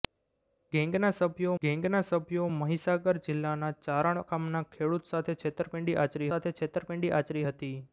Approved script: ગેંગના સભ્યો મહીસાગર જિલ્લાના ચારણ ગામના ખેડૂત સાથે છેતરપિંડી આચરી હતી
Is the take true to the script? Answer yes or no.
no